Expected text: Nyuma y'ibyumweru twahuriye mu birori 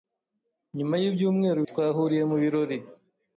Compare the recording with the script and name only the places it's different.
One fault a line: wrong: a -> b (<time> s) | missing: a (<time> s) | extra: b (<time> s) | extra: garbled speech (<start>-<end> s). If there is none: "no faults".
no faults